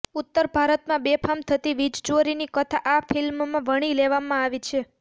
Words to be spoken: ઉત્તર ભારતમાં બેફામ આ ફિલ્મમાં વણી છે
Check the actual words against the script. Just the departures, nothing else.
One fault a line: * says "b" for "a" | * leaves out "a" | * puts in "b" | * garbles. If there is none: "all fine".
* puts in "થતી વીજચોરીની કથા"
* puts in "લેવામાં આવી"